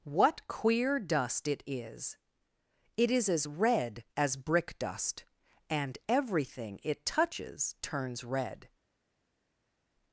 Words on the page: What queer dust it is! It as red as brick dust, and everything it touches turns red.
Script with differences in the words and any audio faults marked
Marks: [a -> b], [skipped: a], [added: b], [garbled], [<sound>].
What queer dust it is! It [added: is] as red as brick dust, and everything it touches turns red.